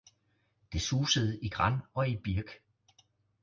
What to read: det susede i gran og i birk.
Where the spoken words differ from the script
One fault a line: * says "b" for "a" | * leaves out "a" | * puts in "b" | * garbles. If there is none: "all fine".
all fine